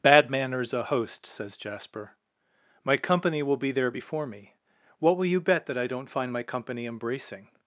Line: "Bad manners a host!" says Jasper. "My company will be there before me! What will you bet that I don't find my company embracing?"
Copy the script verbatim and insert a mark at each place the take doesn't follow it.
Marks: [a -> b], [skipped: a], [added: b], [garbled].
"Bad manners a host!" says Jasper. "My company will be there before me! What will you bet that I don't find my company embracing?"